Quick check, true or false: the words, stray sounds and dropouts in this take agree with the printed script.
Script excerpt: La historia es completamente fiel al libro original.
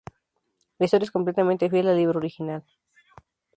true